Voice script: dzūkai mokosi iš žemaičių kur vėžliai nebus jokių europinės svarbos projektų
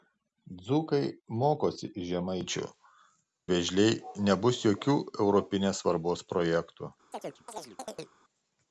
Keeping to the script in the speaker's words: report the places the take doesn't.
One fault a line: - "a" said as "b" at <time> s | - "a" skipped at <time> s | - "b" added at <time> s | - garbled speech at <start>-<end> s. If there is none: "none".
- "kur" skipped at 2.6 s